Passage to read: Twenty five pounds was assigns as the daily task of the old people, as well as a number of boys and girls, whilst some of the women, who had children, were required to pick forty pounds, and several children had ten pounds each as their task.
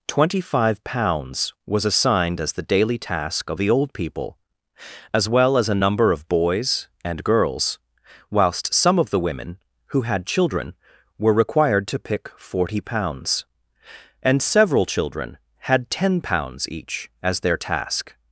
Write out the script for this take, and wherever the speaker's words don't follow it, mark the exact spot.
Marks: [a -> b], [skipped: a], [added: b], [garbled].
Twenty five pounds was [assigns -> assigned] as the daily task of the old people, as well as a number of boys and girls, whilst some of the women, who had children, were required to pick forty pounds, and several children had ten pounds each as their task.